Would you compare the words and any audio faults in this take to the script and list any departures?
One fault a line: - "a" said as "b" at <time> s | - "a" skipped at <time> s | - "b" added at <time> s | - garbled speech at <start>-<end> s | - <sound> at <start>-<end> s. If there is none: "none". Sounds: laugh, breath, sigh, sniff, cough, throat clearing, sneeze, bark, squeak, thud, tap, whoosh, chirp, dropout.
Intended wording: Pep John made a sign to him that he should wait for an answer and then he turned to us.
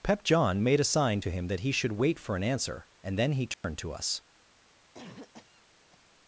- dropout at 3.5-3.6 s
- cough at 4.9-6.1 s